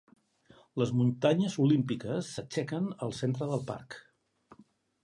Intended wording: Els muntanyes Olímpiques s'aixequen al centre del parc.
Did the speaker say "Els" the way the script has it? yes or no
no